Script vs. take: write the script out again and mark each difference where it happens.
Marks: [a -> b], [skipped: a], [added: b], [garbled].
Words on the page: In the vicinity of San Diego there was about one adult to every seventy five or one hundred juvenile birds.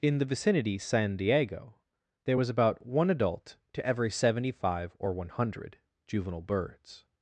In the vicinity [skipped: of] San Diego there was about one adult to every seventy five or one hundred juvenile birds.